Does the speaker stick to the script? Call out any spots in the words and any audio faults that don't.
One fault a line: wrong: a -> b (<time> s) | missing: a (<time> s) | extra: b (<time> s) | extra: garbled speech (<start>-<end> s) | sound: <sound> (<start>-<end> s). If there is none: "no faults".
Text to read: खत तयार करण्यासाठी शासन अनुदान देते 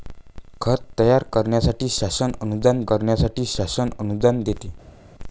extra: करण्यासाठी शासन अनुदान (2.9 s)